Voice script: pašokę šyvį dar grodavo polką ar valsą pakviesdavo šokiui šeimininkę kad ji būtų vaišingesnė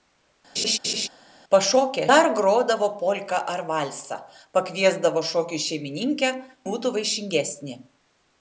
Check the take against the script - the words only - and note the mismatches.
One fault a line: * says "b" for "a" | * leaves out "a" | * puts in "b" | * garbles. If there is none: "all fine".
* leaves out "šyvį"
* leaves out "kad ji"